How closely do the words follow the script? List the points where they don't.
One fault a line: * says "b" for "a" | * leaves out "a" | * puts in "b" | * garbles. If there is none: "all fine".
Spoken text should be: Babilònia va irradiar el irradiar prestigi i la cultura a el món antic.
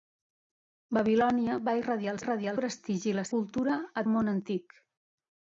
all fine